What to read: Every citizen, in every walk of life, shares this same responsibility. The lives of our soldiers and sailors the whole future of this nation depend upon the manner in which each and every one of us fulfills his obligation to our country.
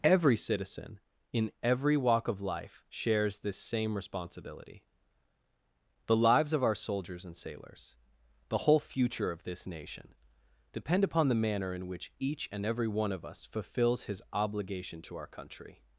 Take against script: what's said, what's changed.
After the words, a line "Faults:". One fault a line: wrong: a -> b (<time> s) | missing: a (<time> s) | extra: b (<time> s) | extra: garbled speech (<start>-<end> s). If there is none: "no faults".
Every citizen, in every walk of life, shares this same responsibility. The lives of our soldiers and sailors the whole future of this nation depend upon the manner in which each and every one of us fulfills his obligation to our country.
Faults:
no faults